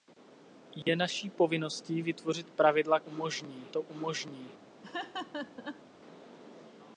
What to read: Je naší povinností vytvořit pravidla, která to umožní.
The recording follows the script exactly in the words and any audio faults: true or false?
false